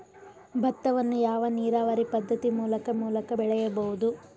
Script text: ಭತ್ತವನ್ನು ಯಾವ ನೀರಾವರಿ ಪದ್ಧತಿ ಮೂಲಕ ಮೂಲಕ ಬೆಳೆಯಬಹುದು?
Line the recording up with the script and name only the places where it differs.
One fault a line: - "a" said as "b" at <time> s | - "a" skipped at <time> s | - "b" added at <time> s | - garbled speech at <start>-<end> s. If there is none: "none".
none